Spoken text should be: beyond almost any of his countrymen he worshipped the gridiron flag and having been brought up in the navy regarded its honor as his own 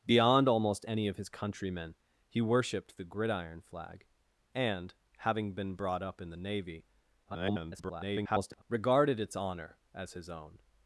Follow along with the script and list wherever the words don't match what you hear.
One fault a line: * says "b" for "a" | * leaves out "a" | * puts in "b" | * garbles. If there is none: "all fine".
* garbles